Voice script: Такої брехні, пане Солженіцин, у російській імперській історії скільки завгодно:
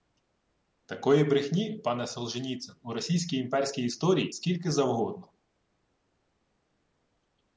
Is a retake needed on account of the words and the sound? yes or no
no